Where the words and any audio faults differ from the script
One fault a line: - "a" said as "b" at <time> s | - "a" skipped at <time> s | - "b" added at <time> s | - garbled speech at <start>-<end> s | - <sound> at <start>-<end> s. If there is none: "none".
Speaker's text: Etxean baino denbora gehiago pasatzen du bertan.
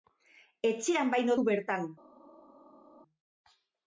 - "denbora gehiago pasatzen" skipped at 1.4 s